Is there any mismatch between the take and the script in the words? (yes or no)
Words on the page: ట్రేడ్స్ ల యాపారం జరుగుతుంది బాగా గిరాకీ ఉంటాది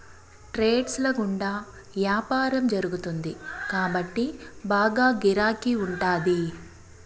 yes